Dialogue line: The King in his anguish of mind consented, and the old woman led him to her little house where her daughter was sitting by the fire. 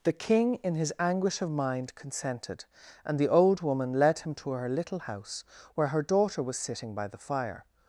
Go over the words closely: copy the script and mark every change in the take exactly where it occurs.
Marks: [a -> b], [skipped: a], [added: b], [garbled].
The King in his anguish of mind consented, and the old woman led him to her little house where her daughter was sitting by the fire.